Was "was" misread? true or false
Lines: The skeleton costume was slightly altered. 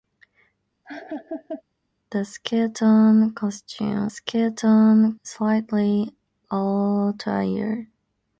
true